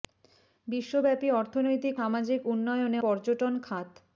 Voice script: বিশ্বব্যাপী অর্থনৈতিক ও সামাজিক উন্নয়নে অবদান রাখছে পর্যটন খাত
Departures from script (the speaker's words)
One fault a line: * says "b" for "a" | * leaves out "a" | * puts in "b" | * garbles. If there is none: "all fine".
* leaves out "ও"
* leaves out "অবদান রাখছে"